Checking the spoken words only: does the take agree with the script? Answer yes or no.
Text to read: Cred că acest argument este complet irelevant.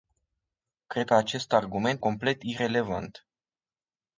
no